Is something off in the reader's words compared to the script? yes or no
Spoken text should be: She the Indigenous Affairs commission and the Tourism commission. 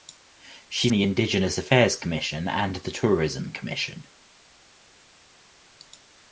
no